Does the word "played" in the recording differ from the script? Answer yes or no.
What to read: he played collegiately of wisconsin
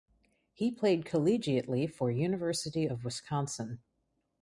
no